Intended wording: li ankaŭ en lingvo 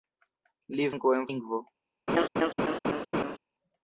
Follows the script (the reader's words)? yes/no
yes